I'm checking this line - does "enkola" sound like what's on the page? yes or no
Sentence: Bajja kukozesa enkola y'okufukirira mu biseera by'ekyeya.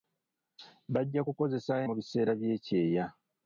no